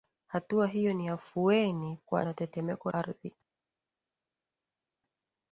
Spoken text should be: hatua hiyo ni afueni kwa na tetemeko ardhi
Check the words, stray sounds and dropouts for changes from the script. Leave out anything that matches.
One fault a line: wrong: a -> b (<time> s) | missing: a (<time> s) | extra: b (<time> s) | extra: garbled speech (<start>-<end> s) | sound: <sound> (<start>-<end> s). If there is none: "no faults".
no faults